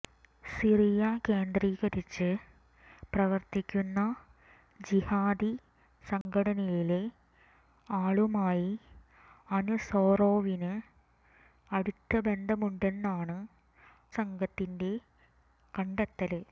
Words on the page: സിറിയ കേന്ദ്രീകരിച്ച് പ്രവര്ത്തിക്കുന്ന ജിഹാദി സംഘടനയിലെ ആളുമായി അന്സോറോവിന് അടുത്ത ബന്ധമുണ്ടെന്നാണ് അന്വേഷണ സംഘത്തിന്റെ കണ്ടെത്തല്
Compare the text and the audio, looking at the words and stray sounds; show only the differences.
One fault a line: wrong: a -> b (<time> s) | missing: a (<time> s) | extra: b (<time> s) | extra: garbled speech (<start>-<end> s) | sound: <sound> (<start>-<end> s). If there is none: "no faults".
sound: dropout (6.2-6.3 s)
missing: അന്വേഷണ (13.4 s)